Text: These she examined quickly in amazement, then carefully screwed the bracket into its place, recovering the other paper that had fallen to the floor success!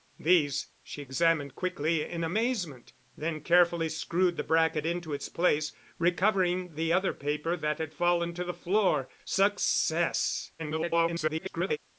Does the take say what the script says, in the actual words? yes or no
no